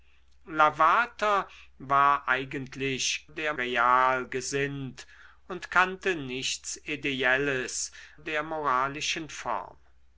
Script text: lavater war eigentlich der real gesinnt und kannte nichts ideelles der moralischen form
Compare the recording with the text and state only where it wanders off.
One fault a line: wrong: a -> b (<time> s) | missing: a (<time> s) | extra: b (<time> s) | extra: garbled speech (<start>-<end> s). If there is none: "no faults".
no faults